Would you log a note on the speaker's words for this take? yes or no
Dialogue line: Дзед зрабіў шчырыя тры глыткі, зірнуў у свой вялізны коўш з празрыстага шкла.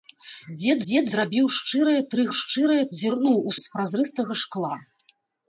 yes